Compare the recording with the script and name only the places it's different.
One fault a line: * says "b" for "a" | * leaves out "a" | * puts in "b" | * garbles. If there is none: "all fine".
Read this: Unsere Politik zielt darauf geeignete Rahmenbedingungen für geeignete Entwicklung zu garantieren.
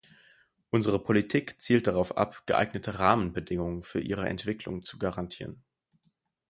* puts in "ab"
* says "ihre" for "geeignete"